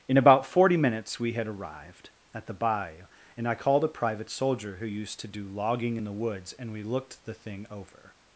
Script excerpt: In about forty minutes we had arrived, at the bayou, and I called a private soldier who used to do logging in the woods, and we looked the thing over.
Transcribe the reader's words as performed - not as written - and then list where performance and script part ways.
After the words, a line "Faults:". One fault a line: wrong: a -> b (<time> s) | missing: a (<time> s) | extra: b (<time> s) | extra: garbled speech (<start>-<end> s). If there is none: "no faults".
In about forty minutes we had arrived, at the bayou, and I called a private soldier who used to do logging in the woods, and we looked the thing over.
Faults:
no faults